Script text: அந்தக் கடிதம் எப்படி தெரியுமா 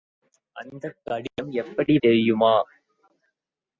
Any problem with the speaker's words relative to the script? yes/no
no